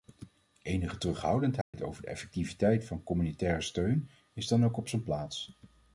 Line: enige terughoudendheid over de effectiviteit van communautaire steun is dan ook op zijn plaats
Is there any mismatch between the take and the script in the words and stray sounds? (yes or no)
yes